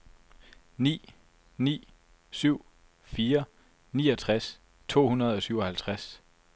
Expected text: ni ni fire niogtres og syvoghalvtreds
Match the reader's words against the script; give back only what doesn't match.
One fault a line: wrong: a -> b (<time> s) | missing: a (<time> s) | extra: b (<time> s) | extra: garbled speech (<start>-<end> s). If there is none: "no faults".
extra: syv (2.3 s)
extra: to hundrede (4.9 s)